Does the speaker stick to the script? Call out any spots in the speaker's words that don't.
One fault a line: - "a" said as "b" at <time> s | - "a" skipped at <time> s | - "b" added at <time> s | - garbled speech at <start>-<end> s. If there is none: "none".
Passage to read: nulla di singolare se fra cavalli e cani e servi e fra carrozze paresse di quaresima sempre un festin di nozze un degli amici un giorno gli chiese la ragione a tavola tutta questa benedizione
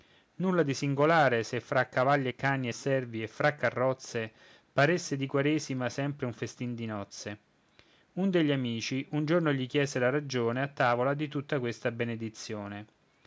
- "di" added at 11.1 s